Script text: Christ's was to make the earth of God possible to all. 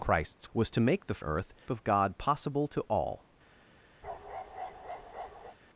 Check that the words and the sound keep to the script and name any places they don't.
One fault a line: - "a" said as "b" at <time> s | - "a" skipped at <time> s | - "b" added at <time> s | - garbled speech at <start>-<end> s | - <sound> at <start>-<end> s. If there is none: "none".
- bark at 4.0-5.6 s